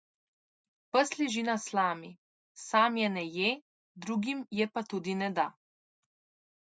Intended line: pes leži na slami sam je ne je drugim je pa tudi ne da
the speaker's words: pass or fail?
pass